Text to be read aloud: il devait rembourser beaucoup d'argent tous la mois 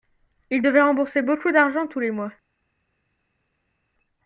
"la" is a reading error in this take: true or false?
true